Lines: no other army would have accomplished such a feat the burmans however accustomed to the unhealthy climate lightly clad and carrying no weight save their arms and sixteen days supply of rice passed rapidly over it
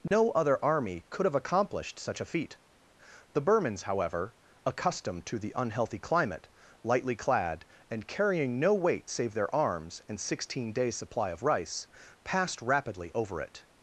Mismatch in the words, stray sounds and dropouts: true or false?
true